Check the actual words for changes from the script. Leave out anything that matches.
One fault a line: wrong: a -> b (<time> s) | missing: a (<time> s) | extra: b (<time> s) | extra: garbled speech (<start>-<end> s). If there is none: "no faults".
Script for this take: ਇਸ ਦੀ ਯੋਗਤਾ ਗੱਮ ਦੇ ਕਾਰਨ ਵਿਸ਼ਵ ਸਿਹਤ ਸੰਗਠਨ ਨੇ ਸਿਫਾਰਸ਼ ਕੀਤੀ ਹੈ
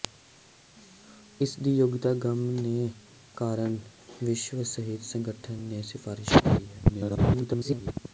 extra: garbled speech (6.9-7.9 s)